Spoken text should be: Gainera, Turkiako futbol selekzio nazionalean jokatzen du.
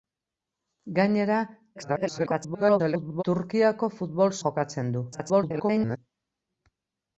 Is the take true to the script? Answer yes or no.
no